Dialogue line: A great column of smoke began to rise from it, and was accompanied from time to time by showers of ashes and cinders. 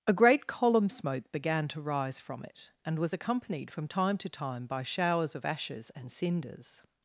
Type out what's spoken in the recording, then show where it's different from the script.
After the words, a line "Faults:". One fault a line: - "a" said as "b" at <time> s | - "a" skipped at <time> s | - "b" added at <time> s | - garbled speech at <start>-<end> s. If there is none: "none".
A great column smoke began to rise from it, and was accompanied from time to time by showers of ashes and cinders.
Faults:
- "of" skipped at 0.9 s